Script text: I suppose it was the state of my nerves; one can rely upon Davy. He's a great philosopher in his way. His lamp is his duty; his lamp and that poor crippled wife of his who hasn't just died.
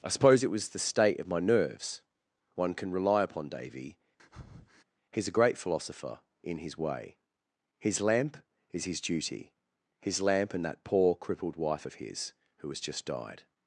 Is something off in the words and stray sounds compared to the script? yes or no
yes